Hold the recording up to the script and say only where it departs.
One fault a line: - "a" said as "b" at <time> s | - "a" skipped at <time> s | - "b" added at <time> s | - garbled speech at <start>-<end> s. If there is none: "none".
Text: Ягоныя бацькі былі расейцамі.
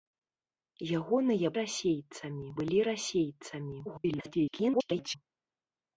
- "бацькі" said as "расейцамі" at 1.6 s
- garbled speech at 3.9-5.2 s